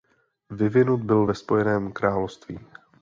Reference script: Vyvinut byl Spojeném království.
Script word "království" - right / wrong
right